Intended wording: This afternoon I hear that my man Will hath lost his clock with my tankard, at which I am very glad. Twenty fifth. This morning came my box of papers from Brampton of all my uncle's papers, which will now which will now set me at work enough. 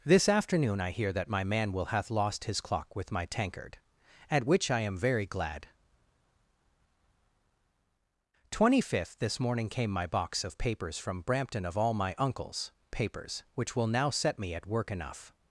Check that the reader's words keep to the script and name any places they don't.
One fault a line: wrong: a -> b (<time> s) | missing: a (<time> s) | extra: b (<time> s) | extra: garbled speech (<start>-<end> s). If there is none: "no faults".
missing: which will now (14.1 s)